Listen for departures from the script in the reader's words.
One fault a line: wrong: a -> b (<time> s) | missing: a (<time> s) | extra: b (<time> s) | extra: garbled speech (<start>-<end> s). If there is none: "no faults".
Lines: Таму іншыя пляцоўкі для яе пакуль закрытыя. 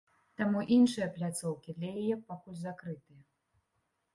no faults